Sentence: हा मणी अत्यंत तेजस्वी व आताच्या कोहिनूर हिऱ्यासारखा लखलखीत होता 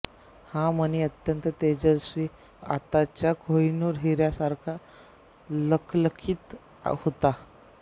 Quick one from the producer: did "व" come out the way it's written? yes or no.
no